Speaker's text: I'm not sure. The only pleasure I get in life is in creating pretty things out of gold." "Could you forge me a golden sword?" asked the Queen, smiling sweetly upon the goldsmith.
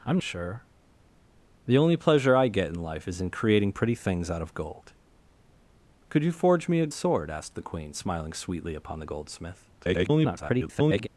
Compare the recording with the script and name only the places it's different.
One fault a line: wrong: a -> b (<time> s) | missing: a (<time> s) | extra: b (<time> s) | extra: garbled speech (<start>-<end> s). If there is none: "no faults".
missing: not (0.2 s)
missing: golden (6.9 s)
extra: garbled speech (9.8-11.1 s)